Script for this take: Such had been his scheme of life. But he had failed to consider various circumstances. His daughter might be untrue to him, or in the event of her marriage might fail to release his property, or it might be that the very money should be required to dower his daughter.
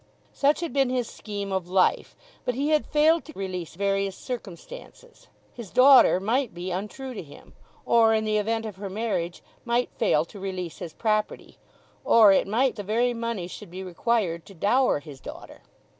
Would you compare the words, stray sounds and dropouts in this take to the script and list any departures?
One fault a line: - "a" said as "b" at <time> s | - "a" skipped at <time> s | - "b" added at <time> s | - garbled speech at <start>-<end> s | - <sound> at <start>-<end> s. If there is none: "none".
- "consider" said as "release" at 3.4 s
- "be that" skipped at 12.8 s